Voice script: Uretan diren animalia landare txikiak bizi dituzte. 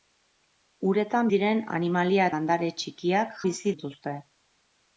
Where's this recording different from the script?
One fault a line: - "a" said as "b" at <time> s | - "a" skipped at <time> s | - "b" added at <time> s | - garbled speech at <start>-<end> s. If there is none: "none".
none